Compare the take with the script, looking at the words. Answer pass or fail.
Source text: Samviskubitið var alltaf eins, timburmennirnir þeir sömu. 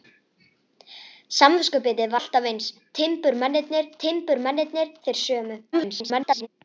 fail